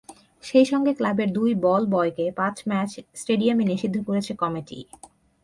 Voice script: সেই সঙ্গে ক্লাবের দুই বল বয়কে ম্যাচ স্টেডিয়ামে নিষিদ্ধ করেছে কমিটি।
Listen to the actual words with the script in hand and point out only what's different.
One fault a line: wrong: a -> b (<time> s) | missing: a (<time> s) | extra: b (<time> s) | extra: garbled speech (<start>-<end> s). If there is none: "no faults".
extra: পাঁচ (2.4 s)